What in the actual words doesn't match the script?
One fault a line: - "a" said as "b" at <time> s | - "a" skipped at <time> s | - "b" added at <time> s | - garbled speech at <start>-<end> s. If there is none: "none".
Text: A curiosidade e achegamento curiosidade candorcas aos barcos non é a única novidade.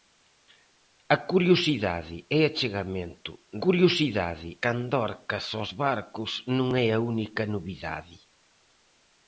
none